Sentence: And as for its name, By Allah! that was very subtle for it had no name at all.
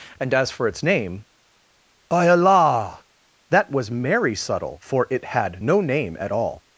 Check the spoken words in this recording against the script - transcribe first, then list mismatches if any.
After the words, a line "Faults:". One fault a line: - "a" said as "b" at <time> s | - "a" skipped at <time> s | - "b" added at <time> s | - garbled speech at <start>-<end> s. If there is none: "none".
And as for its name, By Allah! that was merry subtle for it had no name at all.
Faults:
- "very" said as "merry" at 3.9 s